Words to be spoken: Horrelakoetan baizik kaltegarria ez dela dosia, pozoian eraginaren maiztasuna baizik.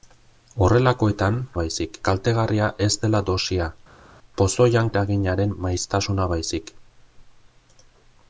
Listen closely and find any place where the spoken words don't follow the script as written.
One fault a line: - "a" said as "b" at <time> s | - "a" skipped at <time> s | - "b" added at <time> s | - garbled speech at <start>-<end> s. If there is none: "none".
none